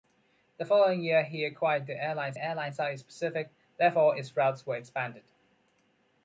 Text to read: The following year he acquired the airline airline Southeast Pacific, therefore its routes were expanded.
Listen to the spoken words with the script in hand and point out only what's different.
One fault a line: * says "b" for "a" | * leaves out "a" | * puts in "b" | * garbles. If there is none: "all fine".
all fine